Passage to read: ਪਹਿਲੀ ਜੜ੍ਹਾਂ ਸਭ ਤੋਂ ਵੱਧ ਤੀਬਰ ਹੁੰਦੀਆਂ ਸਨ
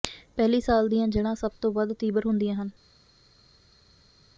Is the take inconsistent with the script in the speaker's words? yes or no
yes